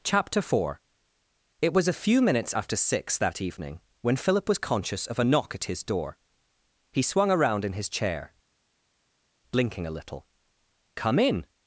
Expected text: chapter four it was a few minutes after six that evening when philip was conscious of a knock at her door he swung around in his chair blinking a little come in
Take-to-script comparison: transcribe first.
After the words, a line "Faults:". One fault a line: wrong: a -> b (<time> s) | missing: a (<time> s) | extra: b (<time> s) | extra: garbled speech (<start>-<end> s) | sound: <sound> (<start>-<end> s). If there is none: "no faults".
chapter four it was a few minutes after six that evening when philip was conscious of a knock at his door he swung around in his chair blinking a little come in
Faults:
wrong: her -> his (5.7 s)